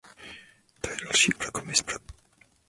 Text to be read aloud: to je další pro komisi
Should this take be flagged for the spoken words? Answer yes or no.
no